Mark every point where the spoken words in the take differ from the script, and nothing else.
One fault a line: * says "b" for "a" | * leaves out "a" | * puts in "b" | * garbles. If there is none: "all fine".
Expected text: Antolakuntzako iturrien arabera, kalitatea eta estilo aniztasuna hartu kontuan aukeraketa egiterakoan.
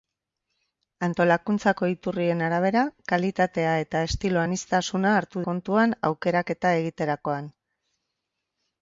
all fine